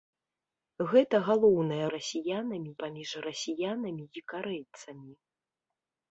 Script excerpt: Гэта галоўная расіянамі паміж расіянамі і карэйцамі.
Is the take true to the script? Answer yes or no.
yes